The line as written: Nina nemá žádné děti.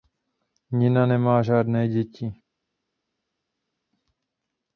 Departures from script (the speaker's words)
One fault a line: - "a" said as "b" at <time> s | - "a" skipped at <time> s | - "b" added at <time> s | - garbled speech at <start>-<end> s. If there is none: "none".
none